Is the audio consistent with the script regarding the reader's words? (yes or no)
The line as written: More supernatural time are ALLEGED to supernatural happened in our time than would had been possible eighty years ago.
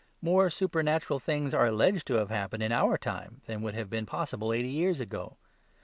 no